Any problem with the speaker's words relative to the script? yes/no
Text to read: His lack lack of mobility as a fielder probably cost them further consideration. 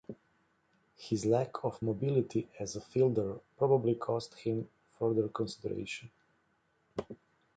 yes